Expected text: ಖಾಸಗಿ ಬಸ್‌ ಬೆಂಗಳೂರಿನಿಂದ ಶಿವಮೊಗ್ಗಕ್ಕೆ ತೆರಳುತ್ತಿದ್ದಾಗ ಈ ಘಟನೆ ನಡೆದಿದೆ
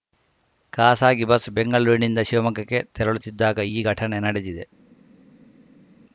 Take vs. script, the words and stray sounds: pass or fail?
pass